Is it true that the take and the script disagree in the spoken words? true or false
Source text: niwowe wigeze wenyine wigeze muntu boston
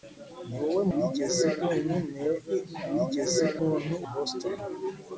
false